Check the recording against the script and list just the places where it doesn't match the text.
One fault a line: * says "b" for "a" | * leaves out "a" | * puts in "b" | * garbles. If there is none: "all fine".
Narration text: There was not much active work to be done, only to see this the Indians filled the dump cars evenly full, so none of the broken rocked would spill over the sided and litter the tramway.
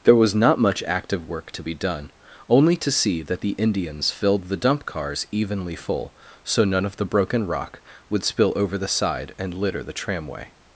* says "that" for "this"
* says "rock" for "rocked"
* says "side" for "sided"